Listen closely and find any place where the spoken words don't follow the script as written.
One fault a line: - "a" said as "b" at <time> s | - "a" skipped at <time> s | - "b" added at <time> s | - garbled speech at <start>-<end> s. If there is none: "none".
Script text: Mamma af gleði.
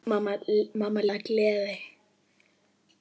none